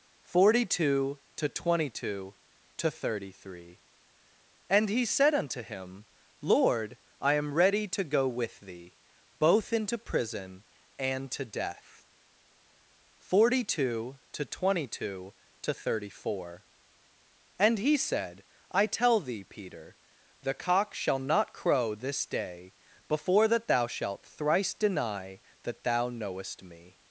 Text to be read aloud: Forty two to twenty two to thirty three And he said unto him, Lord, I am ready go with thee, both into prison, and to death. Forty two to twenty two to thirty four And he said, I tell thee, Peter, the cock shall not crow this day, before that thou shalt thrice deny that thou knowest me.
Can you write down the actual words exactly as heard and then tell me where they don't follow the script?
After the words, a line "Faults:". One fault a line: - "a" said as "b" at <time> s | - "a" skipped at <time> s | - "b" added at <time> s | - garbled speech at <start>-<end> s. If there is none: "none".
Forty two to twenty two to thirty three And he said unto him, Lord, I am ready to go with thee, both into prison, and to death. Forty two to twenty two to thirty four And he said, I tell thee, Peter, the cock shall not crow this day, before that thou shalt thrice deny that thou knowest me.
Faults:
- "to" added at 7.9 s